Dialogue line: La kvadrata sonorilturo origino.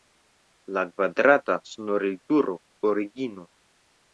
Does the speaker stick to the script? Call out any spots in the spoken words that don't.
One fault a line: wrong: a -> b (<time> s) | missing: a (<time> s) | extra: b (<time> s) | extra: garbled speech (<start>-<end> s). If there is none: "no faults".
no faults